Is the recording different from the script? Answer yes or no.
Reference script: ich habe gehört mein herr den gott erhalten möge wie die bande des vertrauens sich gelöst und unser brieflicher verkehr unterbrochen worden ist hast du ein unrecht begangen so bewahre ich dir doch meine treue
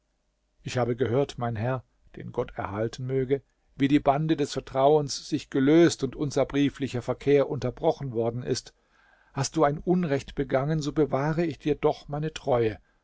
no